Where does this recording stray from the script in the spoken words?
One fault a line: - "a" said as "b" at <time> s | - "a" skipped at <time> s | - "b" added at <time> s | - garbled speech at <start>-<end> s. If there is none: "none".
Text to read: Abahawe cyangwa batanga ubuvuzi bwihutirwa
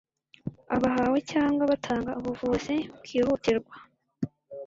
none